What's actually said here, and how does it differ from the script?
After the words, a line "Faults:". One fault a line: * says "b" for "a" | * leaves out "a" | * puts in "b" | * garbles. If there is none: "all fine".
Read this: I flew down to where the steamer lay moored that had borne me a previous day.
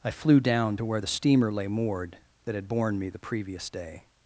I flew down to where the steamer lay moored that had borne me the previous day.
Faults:
* says "the" for "a"